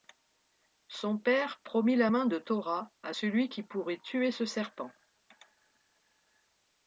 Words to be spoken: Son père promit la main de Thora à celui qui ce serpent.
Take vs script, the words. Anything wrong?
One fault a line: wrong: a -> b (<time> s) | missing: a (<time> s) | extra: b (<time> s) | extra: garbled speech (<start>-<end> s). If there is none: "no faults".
extra: pourrait tuer (3.6 s)